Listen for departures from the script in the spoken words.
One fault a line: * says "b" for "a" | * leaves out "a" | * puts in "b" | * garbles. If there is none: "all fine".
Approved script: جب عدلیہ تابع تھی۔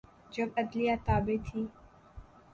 all fine